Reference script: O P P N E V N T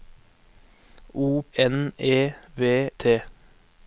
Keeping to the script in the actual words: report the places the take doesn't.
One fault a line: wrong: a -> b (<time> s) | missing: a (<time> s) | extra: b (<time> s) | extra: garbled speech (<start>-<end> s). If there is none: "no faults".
missing: P P (1.4 s)
missing: N (2.9 s)